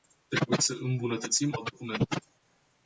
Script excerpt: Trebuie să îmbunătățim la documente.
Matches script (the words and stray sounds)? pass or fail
pass